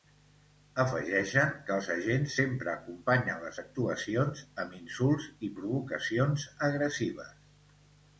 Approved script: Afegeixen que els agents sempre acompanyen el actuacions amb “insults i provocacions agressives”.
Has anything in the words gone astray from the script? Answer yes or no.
yes